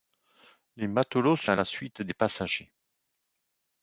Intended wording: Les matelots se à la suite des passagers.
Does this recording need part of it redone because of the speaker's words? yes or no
no